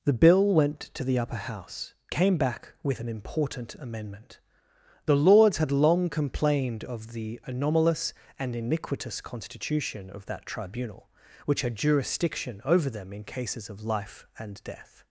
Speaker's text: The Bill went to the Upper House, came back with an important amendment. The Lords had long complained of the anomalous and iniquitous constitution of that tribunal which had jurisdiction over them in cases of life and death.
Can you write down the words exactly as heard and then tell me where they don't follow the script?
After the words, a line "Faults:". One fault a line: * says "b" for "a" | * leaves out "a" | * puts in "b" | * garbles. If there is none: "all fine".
The Bill went to the Upper House, came back with an important amendment. The Lords had long complained of the anomalous and iniquitous constitution of that tribunal which had jurisdiction over them in cases of life and death.
Faults:
all fine